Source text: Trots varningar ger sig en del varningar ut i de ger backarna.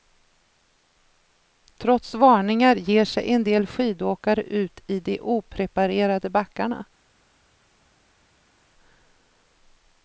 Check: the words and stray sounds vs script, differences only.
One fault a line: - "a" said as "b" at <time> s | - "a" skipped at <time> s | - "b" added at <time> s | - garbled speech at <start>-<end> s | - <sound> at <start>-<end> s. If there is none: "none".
- "varningar" said as "skidåkare" at 3.7 s
- "ger" said as "opreparerade" at 5.2 s